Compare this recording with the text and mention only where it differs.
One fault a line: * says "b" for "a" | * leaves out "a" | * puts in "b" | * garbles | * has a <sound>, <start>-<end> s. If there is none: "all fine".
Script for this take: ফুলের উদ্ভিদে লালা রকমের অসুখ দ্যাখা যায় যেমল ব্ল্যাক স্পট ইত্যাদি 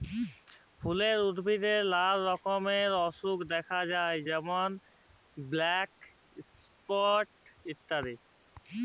all fine